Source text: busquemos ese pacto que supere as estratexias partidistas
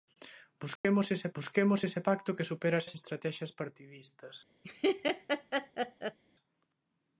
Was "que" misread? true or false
false